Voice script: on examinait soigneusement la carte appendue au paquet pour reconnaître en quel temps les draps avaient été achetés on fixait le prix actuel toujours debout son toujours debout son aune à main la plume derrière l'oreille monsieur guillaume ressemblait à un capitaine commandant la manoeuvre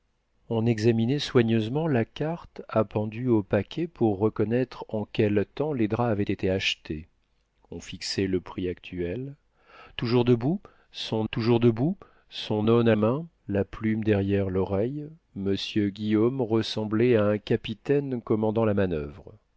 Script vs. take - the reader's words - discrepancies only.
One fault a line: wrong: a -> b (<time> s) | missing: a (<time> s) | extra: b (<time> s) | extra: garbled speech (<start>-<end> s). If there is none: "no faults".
no faults